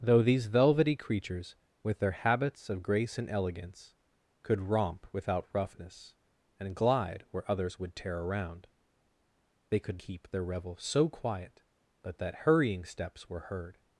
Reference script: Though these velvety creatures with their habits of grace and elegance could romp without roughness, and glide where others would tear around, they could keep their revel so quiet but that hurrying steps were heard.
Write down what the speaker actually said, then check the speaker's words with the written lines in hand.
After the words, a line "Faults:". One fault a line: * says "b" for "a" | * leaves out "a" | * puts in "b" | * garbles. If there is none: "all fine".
Though these velvety creatures with their habits of grace and elegance could romp without roughness, and glide where others would tear around, they could keep their revel so quiet but that hurrying steps were heard.
Faults:
all fine